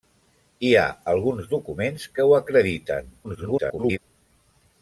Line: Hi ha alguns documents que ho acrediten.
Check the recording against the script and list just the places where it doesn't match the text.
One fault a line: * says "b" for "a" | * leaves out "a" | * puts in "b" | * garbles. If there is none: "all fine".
* garbles